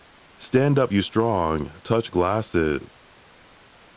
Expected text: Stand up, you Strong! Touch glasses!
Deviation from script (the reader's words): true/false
false